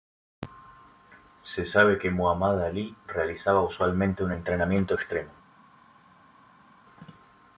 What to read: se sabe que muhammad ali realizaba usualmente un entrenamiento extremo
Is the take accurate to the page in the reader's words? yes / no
yes